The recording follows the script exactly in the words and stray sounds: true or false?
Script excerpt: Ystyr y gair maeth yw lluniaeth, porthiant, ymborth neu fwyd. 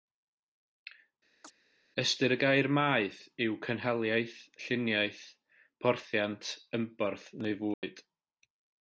false